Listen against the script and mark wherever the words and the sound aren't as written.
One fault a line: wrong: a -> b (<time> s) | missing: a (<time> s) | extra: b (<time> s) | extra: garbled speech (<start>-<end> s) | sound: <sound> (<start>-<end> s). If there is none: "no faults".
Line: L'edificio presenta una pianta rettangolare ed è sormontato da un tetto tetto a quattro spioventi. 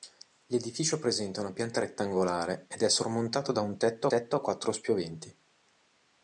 no faults